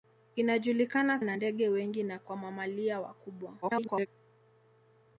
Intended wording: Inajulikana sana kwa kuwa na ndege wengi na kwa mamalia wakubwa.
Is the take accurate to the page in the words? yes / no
no